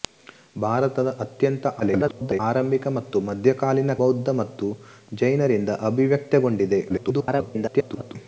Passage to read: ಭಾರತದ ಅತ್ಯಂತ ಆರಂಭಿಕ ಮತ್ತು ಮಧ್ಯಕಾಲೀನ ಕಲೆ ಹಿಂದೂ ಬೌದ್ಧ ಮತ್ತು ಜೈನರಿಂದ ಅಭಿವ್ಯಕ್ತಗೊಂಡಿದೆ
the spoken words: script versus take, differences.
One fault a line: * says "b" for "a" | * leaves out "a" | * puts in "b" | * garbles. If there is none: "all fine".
* garbles
* leaves out "ಕಲೆ ಹಿಂದೂ"
* garbles